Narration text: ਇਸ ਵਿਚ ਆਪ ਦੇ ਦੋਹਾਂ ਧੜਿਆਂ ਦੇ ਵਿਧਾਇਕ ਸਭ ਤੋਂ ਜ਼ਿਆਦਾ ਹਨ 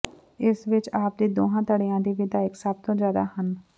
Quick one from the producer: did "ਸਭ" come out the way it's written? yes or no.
yes